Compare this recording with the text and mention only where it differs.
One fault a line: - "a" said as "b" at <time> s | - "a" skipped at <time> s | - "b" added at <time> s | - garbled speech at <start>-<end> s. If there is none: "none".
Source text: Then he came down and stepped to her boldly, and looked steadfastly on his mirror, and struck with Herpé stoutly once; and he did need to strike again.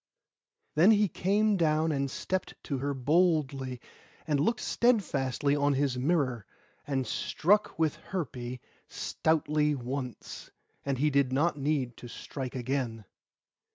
- "not" added at 11.3 s